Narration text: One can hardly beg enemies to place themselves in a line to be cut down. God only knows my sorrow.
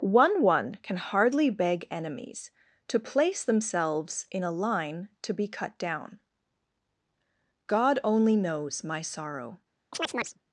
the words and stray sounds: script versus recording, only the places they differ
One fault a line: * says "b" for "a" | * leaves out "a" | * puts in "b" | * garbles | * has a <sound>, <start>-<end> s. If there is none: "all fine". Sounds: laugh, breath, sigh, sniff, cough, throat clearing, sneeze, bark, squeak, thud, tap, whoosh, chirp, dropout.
* puts in "one"
* has a chirp, 9.9-10.4 s